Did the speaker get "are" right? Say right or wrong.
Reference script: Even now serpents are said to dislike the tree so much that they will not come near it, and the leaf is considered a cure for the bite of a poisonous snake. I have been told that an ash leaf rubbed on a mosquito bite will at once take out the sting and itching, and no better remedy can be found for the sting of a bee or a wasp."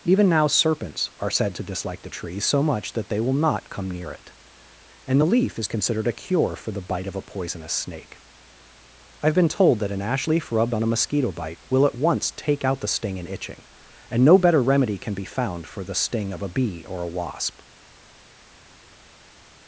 right